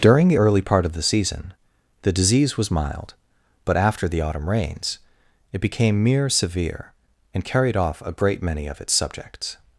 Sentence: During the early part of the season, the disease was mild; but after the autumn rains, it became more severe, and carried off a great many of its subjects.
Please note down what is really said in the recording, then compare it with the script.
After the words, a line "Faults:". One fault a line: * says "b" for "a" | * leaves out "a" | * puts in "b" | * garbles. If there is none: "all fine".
During the early part of the season, the disease was mild; but after the autumn rains, it became mere severe, and carried off a great many of its subjects.
Faults:
* says "mere" for "more"